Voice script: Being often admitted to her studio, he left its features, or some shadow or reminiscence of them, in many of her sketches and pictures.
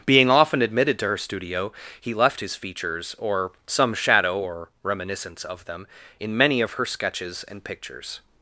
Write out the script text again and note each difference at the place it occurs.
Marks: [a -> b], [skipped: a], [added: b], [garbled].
Being often admitted to her studio, he left [its -> his] features, or some shadow or reminiscence of them, in many of her sketches and pictures.